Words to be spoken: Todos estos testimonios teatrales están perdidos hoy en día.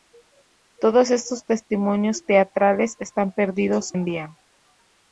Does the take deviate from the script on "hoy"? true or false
true